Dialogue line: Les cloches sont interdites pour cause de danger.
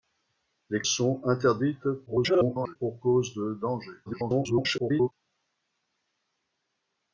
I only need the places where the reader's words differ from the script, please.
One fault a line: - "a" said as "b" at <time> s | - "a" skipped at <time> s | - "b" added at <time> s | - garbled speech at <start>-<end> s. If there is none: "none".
- "cloches" skipped at 0.8 s
- garbled speech at 2.1-2.8 s
- garbled speech at 4.1-5.1 s